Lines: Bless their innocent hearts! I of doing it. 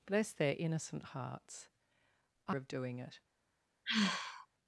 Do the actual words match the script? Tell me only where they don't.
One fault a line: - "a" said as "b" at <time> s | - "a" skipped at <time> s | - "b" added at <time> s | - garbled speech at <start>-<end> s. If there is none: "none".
none